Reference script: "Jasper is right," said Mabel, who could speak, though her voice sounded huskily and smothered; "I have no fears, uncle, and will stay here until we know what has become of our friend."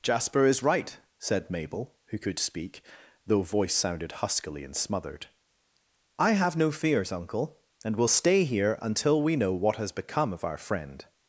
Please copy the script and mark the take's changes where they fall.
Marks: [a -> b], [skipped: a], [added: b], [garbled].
"Jasper is right," said Mabel, who could speak, though [skipped: her] voice sounded huskily and smothered; "I have no fears, uncle, and will stay here until we know what has become of our friend."